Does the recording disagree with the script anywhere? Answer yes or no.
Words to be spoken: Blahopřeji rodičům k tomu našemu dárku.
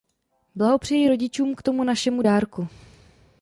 no